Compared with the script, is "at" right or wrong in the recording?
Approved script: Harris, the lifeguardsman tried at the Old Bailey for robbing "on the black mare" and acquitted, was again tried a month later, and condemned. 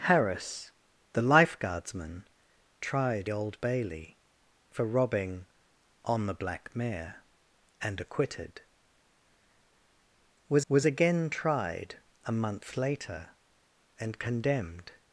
wrong